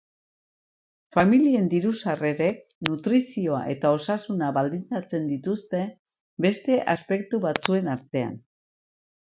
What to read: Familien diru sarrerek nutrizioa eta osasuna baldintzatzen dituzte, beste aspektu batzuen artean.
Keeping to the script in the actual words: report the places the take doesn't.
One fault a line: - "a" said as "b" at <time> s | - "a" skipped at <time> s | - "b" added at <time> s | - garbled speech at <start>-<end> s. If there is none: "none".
none